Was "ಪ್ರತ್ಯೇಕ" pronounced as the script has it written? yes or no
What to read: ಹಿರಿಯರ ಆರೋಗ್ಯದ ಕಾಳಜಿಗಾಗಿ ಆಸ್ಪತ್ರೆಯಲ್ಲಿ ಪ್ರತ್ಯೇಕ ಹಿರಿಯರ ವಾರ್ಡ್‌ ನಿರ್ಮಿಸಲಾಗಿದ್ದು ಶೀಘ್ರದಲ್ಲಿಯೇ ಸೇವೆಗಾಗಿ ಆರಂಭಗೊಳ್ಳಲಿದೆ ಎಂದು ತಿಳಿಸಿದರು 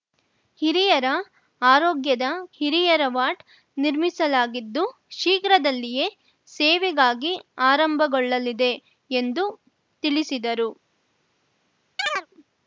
no